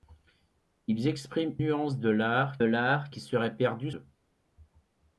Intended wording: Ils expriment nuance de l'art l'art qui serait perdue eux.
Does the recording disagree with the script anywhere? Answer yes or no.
no